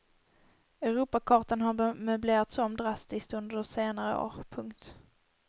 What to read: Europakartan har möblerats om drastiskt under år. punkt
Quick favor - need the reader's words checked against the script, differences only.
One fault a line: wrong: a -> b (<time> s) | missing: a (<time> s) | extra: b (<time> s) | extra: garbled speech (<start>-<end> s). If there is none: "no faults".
extra: senare (3.6 s)